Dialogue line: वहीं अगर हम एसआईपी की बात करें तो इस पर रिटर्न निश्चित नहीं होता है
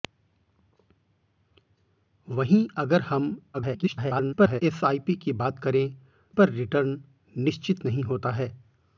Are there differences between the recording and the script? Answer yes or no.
yes